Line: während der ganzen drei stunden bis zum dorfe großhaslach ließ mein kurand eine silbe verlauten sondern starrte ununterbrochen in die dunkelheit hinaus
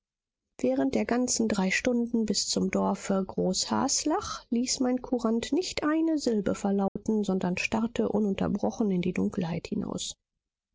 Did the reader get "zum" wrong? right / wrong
right